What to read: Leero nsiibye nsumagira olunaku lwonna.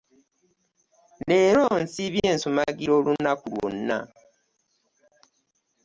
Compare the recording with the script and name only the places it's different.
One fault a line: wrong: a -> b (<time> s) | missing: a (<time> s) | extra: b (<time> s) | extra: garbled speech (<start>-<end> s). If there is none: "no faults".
no faults